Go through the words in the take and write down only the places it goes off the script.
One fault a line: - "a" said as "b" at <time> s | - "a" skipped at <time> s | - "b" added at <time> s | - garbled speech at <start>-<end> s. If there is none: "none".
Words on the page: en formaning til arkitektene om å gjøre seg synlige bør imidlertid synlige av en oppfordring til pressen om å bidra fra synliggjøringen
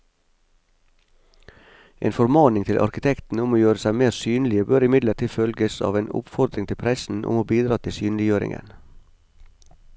- "mer" added at 4.0 s
- "synlige" said as "følges" at 5.3 s
- "fra" said as "til" at 7.8 s